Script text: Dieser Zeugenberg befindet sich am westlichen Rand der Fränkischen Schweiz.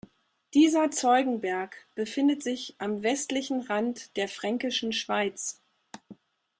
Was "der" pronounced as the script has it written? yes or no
yes